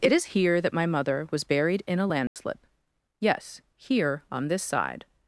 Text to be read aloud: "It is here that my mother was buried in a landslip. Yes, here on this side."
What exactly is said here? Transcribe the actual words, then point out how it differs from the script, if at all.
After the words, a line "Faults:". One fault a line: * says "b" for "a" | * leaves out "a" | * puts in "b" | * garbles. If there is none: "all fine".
"It is here that my mother was buried in a landslip. Yes, here on this side."
Faults:
all fine